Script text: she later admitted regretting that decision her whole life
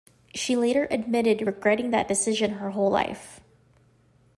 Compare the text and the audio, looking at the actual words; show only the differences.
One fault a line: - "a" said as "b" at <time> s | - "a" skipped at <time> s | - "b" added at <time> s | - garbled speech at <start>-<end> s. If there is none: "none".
none